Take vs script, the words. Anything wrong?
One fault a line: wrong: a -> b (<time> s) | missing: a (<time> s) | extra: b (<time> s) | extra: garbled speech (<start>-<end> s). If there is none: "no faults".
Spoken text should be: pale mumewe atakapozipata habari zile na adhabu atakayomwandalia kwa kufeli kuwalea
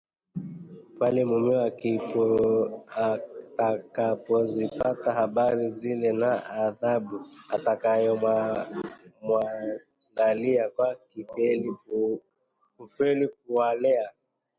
no faults